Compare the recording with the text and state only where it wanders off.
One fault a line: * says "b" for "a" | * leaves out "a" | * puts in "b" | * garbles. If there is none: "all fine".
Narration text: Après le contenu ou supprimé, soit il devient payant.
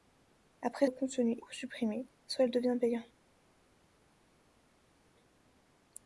all fine